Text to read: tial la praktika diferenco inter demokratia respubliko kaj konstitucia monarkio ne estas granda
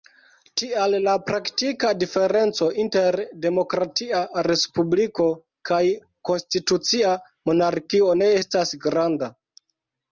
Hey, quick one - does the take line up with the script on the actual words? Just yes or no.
yes